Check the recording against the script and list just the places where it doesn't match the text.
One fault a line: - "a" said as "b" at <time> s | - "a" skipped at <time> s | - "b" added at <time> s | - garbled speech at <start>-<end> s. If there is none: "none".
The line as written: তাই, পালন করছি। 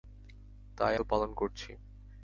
none